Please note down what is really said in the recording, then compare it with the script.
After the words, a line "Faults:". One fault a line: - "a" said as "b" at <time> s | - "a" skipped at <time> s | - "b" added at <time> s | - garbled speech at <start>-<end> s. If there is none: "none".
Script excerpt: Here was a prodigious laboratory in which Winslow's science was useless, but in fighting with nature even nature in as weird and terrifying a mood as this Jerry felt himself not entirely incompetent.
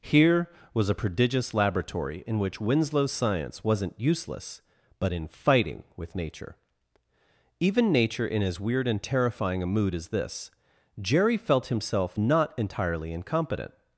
Here was a prodigious laboratory in which Winslow's science wasn't useless, but in fighting with nature even nature in as weird and terrifying a mood as this Jerry felt himself not entirely incompetent.
Faults:
- "was" said as "wasn't" at 3.6 s